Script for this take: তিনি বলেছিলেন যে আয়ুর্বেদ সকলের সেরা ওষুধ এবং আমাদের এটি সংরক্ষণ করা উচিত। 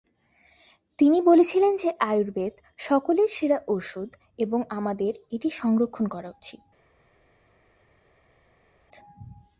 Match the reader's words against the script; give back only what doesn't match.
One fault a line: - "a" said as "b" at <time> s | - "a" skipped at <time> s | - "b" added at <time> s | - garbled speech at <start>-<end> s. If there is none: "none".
none